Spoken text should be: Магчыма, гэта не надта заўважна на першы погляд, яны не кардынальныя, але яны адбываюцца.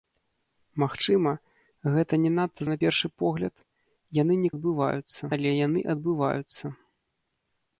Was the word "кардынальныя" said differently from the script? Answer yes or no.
yes